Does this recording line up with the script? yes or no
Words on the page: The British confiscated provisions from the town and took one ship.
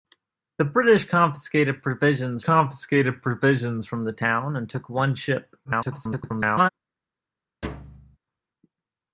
no